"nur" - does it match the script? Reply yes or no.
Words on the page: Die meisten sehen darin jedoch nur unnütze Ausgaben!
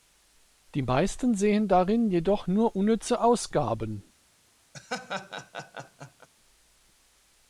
yes